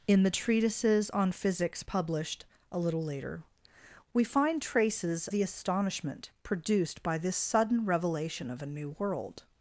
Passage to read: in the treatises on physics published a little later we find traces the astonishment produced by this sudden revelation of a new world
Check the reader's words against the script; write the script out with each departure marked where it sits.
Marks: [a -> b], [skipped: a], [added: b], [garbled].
in the treatises on physics published a little later we find traces the astonishment produced by this sudden revelation of a new world